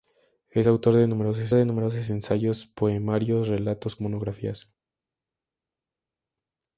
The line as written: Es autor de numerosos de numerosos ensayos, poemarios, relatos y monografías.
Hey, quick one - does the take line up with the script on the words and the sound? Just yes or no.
yes